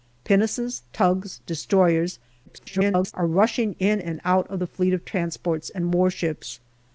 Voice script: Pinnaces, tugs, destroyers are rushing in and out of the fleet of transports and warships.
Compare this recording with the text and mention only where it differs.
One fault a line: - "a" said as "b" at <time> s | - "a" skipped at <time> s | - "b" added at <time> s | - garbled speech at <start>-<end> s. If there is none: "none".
- garbled speech at 2.5-3.1 s